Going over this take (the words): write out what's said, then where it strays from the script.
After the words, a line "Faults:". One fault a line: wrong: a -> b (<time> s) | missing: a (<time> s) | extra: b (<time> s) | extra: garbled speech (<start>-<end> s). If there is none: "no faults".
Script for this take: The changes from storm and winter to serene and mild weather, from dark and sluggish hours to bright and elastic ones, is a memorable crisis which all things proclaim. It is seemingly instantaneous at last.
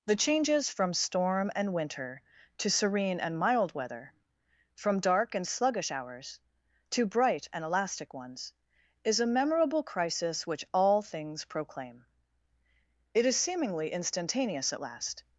The changes from storm and winter to serene and mild weather, from dark and sluggish hours to bright and elastic ones, is a memorable crisis which all things proclaim. It is seemingly instantaneous at last.
Faults:
no faults